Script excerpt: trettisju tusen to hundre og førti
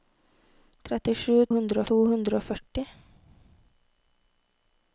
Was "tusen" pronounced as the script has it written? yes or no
no